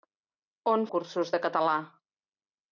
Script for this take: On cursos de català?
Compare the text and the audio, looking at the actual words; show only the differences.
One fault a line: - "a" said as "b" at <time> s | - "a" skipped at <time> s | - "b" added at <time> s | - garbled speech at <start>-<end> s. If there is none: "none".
none